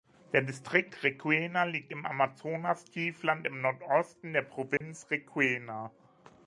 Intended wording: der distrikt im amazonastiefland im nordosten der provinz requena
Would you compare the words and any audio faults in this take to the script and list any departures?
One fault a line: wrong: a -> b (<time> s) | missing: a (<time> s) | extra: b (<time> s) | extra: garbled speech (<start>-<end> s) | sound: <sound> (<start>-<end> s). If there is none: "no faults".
extra: requena liegt (1.0 s)
sound: dropout (4.8-4.8 s)